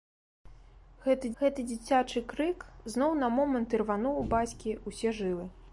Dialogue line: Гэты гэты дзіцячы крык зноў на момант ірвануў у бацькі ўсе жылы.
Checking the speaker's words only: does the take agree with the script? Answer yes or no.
yes